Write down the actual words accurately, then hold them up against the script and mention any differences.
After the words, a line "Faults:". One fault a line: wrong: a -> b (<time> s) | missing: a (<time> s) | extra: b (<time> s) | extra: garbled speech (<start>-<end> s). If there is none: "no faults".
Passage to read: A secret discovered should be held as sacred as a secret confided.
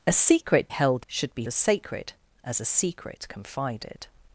A secret held should be as sacred as a secret confided.
Faults:
wrong: discovered -> held (0.7 s)
missing: held (1.4 s)